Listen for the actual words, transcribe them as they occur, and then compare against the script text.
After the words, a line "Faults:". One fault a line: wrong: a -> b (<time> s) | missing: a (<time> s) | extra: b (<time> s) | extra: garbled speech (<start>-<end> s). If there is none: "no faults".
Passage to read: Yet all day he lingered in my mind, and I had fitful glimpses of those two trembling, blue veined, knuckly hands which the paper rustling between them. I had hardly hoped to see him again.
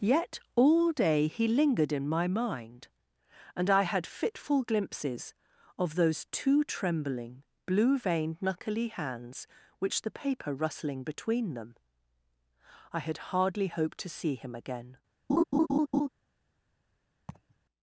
Yet all day he lingered in my mind, and I had fitful glimpses of those two trembling, blue veined, knuckly hands which the paper rustling between them. I had hardly hoped to see him again.
Faults:
no faults